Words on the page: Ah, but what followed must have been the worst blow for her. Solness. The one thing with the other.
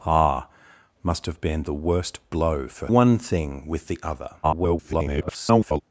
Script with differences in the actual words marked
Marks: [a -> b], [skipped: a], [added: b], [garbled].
Ah, [skipped: but what followed] must have been the worst blow for [skipped: her. Solness. The] one thing with the other. [garbled]